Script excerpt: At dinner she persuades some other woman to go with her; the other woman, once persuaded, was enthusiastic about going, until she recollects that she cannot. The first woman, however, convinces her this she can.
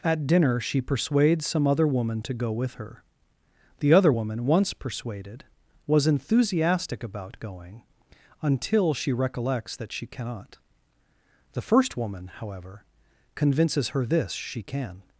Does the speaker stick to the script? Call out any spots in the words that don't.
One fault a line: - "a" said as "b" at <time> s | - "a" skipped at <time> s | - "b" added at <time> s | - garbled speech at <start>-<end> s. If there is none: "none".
none